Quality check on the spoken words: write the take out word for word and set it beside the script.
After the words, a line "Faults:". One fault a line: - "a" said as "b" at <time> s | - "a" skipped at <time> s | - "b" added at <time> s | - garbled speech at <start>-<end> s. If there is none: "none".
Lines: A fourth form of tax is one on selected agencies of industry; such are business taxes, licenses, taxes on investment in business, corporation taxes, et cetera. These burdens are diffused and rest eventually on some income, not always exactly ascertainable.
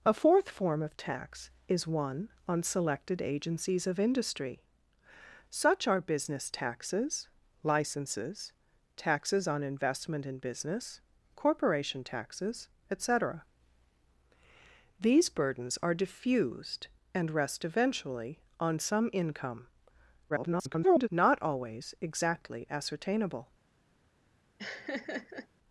A fourth form of tax is one on selected agencies of industry; such are business taxes, licenses, taxes on investment in business, corporation taxes, et cetera. These burdens are diffused and rest eventually on some income, [garbled] not always exactly ascertainable.
Faults:
- garbled speech at 20.3-21.1 s